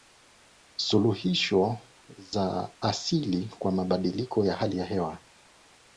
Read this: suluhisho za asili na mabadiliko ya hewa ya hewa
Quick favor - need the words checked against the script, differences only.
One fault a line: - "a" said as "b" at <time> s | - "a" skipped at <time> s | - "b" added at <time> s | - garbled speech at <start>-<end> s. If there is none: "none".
- "na" said as "kwa" at 3.6 s
- "hewa" said as "hali" at 4.6 s